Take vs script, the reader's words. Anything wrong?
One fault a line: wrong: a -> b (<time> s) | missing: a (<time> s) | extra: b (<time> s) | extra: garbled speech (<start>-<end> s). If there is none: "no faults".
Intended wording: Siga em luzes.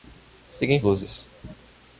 no faults